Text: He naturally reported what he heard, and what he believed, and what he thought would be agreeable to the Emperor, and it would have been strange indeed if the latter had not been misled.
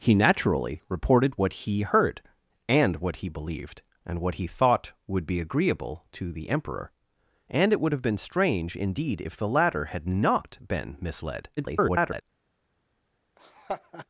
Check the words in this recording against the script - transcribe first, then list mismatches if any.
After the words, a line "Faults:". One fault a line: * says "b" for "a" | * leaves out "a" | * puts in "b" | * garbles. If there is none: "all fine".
He naturally reported what he heard, and what he believed, and what he thought would be agreeable to the Emperor, and it would have been strange indeed if the latter had not been misled. [garbled]
Faults:
* garbles